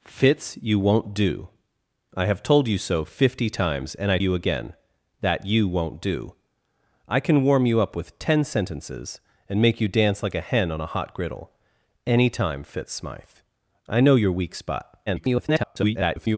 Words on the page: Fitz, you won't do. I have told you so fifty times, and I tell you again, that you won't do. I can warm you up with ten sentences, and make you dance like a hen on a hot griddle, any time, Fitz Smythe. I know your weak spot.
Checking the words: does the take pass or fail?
fail